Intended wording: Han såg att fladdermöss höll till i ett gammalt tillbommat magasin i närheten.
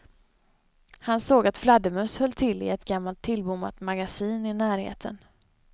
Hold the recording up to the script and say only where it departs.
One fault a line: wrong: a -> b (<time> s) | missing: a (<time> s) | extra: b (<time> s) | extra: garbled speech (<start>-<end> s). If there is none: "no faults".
no faults